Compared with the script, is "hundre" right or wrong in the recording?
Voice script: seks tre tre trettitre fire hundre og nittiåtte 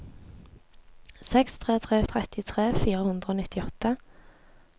right